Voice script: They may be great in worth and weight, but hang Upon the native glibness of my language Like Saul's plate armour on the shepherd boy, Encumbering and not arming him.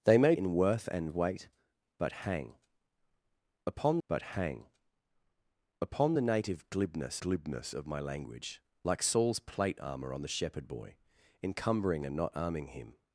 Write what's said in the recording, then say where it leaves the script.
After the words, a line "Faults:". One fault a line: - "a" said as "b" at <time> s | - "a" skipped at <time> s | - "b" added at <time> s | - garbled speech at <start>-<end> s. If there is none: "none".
They may in worth and weight, but hang Upon but hang Upon the native glibness glibness of my language Like Saul's plate armour on the shepherd boy, Encumbering and not arming him.
Faults:
- "be great" skipped at 0.3 s
- "but hang Upon" added at 4.1 s
- "glibness" added at 7.2 s